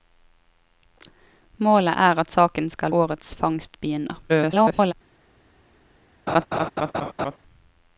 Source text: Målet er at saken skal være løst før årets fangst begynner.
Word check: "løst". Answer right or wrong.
wrong